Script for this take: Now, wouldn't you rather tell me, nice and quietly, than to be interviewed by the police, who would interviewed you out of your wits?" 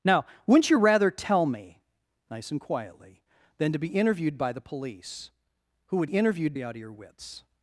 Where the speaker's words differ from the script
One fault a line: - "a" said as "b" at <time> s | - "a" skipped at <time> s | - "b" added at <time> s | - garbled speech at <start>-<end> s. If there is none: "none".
none